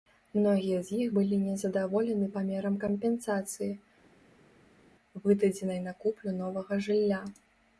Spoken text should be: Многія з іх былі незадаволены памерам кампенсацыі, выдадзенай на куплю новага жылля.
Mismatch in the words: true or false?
false